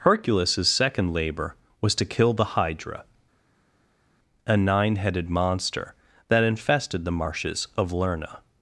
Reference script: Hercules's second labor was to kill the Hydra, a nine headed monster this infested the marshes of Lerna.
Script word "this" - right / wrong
wrong